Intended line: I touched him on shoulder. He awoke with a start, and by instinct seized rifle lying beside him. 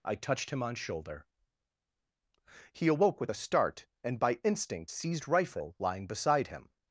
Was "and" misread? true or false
false